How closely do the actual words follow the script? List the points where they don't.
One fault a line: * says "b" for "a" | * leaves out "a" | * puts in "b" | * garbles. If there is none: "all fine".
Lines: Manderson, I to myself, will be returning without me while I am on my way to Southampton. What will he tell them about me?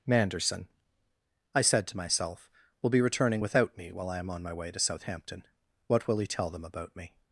* puts in "said"